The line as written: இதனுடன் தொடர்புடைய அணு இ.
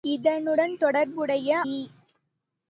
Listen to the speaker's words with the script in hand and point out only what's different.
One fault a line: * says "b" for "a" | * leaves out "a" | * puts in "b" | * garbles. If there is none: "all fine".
* leaves out "அணு"